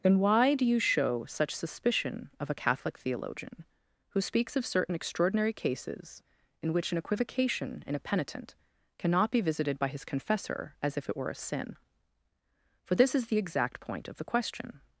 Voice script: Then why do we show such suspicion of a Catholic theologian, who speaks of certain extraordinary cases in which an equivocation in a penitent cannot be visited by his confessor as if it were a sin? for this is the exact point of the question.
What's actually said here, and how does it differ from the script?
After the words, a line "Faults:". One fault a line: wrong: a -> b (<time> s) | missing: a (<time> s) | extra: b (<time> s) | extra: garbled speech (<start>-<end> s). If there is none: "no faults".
Then why do you show such suspicion of a Catholic theologian, who speaks of certain extraordinary cases in which an equivocation in a penitent cannot be visited by his confessor as if it were a sin? for this is the exact point of the question.
Faults:
wrong: we -> you (0.7 s)